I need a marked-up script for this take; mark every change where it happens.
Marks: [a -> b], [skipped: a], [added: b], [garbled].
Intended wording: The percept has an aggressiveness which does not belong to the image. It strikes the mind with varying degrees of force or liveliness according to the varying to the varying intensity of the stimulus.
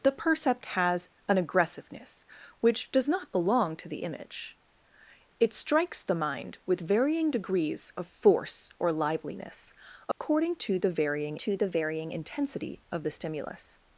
The percept has an aggressiveness which does not belong to the image. It strikes the mind with varying degrees of force or liveliness according to the varying to the varying intensity of the stimulus.